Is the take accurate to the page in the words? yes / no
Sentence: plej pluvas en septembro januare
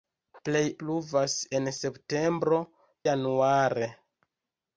yes